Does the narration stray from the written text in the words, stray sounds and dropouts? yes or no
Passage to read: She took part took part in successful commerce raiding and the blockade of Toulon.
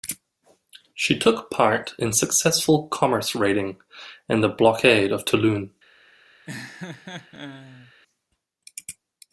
yes